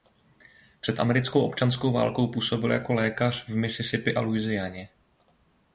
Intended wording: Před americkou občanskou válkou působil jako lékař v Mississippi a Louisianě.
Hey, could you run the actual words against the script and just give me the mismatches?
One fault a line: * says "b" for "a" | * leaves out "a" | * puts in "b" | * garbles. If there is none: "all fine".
all fine